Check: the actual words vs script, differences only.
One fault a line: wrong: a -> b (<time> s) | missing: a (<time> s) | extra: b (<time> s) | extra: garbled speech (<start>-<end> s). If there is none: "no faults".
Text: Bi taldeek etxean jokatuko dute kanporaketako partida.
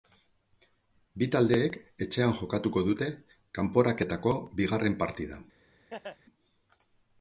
extra: bigarren (4.6 s)